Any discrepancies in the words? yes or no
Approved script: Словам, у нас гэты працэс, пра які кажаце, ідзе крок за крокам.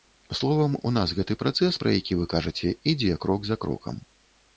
yes